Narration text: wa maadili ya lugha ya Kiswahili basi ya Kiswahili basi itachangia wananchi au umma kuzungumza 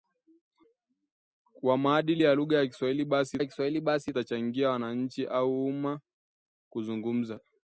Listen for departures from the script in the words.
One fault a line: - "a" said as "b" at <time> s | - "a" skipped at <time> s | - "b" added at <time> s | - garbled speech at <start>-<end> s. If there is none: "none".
none